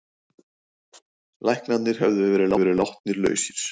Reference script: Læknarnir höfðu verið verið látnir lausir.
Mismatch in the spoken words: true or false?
false